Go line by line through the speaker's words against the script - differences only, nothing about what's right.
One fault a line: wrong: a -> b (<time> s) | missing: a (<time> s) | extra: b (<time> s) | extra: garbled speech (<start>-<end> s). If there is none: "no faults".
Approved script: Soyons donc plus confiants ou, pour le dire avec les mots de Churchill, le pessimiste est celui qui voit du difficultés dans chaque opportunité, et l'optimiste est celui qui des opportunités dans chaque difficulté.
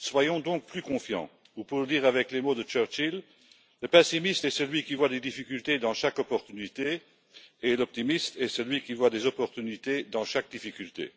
wrong: du -> des (5.1 s)
extra: voit (8.9 s)